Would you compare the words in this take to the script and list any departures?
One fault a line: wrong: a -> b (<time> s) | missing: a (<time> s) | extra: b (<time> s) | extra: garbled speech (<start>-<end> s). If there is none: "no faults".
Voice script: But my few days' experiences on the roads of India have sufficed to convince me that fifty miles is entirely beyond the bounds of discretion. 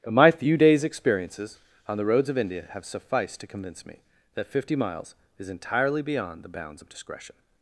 no faults